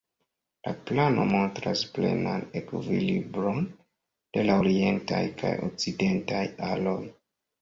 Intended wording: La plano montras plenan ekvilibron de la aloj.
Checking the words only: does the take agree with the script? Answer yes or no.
no